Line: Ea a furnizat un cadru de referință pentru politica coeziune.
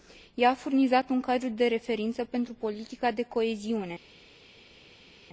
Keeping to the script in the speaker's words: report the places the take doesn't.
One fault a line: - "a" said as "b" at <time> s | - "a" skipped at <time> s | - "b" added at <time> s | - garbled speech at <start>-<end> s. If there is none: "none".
- "de" added at 3.1 s